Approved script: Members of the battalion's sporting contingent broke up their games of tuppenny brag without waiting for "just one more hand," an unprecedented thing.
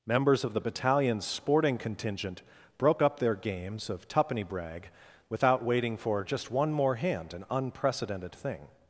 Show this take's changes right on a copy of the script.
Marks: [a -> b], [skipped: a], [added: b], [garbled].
Members of the battalion's sporting contingent broke up their games of tuppenny brag without waiting for "just one more hand," an unprecedented thing.